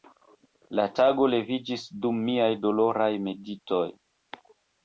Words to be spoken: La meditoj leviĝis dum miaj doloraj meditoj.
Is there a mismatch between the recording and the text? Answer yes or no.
yes